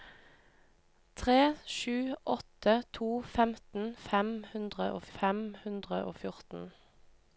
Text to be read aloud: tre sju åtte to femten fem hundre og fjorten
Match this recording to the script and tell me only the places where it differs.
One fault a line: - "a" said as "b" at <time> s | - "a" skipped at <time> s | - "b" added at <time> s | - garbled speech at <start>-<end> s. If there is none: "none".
- "fem hundre og" added at 5.2 s